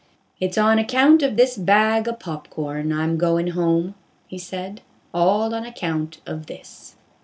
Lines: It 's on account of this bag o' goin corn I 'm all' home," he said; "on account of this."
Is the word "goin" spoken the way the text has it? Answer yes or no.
no